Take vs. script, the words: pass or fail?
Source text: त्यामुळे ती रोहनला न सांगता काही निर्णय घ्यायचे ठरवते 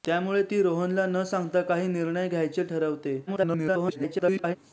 fail